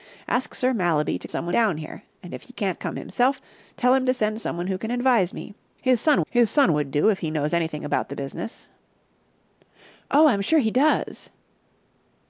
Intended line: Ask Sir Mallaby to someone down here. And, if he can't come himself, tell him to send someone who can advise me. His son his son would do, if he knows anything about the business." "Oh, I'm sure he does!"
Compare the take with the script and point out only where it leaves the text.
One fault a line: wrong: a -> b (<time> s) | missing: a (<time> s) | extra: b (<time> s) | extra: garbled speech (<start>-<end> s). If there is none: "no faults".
no faults